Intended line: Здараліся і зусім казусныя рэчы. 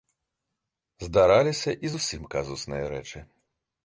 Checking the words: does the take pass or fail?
pass